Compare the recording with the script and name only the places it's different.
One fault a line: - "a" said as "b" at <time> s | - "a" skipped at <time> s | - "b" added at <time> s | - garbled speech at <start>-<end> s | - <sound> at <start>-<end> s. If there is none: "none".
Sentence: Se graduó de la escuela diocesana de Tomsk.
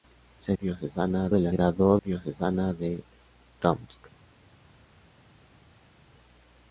- "graduó" said as "diocesana" at 0.6 s
- "escuela" said as "graduó" at 1.5 s